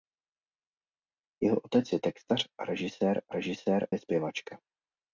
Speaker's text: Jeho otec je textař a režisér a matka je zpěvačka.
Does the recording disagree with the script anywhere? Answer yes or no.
yes